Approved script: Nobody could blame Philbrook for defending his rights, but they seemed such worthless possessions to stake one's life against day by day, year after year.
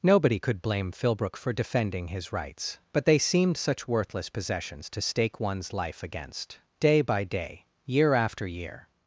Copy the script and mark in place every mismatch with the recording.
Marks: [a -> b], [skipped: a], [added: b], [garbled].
Nobody could blame Philbrook for defending his rights, but they seemed such worthless possessions to stake one's life against day by day, year after year.